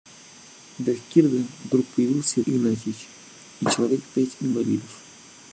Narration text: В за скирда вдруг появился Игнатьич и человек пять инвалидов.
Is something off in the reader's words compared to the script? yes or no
no